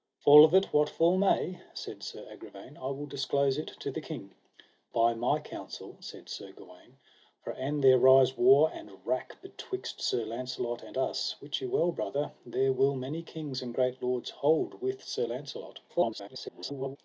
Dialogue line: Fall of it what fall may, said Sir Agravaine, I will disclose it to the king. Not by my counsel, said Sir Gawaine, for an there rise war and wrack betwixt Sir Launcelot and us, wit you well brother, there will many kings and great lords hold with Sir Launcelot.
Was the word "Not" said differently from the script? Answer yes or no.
yes